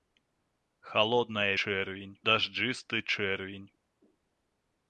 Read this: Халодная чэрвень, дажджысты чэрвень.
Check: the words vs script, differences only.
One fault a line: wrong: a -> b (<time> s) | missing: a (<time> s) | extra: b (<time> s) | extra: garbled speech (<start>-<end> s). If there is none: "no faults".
no faults